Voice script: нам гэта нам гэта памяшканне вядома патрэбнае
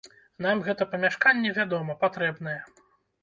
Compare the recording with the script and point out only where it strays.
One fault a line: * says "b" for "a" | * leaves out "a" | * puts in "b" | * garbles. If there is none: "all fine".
* leaves out "нам гэта"